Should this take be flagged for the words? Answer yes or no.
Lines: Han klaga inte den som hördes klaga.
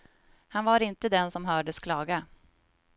yes